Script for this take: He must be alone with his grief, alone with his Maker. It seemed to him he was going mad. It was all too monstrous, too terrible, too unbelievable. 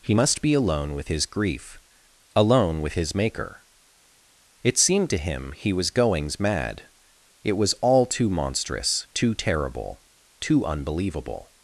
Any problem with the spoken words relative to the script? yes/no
yes